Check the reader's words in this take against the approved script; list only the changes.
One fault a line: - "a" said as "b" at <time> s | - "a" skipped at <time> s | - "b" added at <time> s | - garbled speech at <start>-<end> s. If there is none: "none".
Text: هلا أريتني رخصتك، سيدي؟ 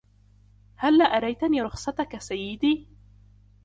none